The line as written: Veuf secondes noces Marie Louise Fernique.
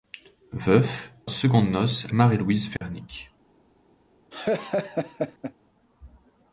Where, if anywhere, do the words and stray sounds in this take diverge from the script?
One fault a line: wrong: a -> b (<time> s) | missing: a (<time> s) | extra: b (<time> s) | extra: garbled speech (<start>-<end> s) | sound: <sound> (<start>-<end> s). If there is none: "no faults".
sound: dropout (2.8-2.8 s)
sound: laugh (4.3-5.5 s)